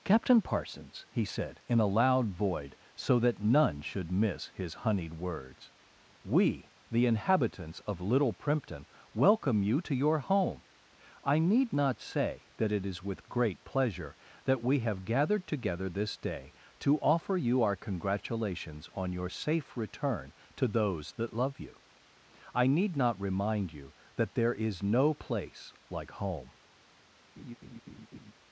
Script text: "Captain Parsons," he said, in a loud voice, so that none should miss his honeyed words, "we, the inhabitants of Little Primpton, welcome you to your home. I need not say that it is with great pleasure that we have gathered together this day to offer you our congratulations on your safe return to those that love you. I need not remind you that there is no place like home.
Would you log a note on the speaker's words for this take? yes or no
yes